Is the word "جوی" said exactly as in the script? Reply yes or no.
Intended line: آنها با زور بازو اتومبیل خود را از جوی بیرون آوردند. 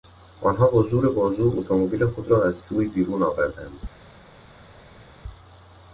yes